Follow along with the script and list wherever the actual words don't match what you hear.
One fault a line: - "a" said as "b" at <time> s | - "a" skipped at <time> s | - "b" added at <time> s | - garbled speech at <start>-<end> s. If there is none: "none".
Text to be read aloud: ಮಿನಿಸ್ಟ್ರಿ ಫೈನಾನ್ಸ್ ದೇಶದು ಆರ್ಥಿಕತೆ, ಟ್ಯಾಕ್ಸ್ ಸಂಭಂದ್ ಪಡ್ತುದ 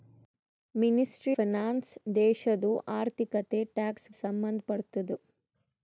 none